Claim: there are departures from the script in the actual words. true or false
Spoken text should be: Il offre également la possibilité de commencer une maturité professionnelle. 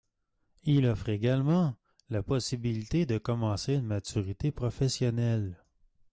false